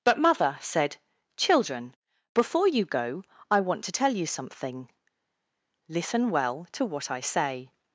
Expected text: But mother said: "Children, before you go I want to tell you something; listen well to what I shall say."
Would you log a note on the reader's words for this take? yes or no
yes